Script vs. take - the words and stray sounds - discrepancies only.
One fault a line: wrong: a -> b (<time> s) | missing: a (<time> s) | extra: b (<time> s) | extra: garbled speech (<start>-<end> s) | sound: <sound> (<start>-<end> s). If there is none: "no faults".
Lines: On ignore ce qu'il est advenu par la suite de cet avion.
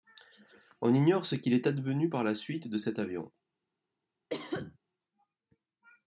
sound: cough (4.3-4.8 s)